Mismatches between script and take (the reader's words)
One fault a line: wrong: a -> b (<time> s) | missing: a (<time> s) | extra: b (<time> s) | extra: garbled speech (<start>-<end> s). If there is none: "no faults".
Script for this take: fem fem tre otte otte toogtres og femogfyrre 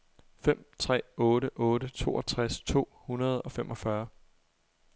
missing: fem (0.7 s)
extra: to hundrede (2.6 s)